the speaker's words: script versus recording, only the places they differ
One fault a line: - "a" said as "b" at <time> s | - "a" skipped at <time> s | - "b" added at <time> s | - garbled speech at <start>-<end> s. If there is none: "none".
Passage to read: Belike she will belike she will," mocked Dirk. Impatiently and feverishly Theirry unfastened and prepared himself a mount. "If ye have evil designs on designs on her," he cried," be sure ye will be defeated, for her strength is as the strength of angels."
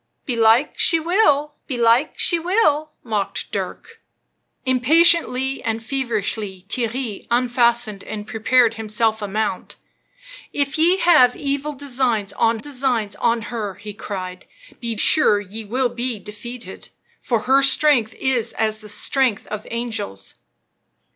none